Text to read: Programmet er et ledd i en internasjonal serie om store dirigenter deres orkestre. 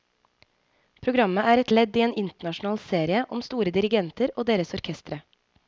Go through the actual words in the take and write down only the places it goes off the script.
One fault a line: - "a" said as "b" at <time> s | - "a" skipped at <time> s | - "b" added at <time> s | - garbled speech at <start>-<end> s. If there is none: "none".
- "og" added at 4.3 s